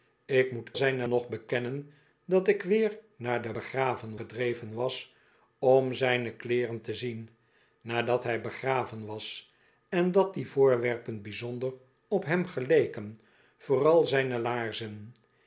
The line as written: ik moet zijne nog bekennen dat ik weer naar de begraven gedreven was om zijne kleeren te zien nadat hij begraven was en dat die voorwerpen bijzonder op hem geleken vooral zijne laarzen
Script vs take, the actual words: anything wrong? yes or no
no